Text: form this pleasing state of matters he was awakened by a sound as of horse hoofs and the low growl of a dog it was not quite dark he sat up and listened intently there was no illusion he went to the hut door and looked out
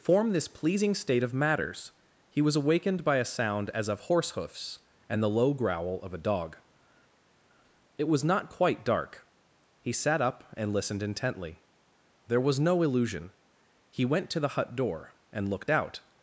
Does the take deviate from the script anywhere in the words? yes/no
no